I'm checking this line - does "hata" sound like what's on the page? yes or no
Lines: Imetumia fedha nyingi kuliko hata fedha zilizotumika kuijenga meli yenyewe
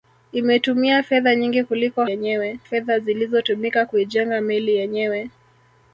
no